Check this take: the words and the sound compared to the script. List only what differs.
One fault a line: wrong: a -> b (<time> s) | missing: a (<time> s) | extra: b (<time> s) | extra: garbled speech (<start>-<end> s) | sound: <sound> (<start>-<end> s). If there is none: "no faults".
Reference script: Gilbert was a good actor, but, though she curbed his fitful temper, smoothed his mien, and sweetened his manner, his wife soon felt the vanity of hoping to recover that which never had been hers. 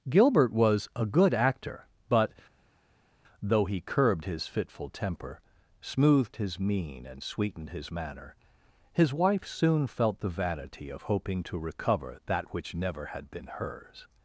wrong: she -> he (3.6 s)